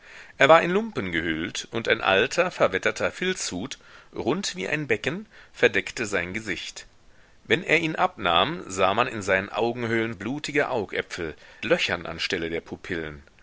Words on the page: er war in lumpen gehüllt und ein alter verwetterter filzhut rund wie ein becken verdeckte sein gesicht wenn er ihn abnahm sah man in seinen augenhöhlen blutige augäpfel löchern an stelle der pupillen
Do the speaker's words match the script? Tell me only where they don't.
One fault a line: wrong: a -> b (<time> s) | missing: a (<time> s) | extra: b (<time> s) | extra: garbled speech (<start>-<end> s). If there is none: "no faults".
no faults